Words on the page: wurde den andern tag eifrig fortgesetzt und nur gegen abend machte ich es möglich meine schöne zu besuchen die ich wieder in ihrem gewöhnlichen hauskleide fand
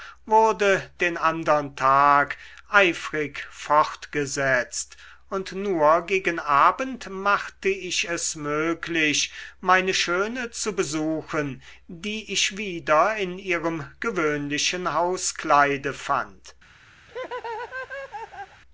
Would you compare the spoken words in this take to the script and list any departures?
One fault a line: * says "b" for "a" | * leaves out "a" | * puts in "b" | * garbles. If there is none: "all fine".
all fine